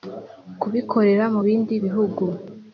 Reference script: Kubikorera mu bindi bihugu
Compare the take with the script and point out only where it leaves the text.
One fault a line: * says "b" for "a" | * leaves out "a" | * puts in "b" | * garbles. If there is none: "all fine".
all fine